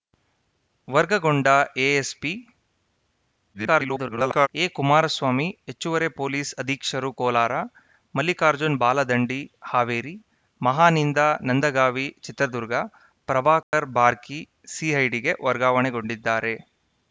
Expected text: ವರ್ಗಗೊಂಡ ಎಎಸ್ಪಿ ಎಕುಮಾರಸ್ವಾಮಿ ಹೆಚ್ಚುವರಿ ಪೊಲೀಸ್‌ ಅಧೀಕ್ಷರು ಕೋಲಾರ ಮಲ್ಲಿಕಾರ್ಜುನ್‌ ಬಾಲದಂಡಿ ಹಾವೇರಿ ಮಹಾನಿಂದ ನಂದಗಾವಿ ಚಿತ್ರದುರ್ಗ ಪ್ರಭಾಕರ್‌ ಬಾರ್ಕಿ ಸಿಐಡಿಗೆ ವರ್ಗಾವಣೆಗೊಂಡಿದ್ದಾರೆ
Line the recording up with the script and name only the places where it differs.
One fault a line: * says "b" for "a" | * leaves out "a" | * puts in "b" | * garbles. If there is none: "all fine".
* garbles